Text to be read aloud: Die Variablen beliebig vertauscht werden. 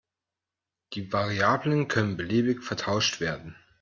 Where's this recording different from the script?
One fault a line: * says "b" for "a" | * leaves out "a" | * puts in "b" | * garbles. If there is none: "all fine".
* puts in "können"